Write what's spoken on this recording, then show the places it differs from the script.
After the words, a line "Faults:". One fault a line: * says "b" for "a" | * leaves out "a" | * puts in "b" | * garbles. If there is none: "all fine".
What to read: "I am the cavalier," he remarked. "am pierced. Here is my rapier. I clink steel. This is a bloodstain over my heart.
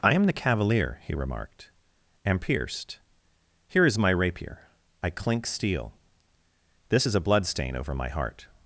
"I am the cavalier," he remarked. "am pierced. Here is my rapier. I clink steel. This is a bloodstain over my heart.
Faults:
all fine